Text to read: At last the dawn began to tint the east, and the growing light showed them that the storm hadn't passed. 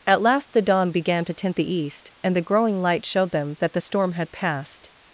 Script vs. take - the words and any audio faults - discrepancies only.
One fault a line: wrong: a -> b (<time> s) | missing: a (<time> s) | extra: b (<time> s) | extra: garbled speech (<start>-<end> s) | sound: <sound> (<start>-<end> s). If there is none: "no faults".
wrong: hadn't -> had (4.1 s)